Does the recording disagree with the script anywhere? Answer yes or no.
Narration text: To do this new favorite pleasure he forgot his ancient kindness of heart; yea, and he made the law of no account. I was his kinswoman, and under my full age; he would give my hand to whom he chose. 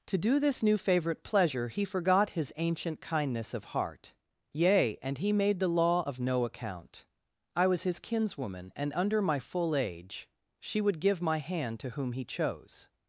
yes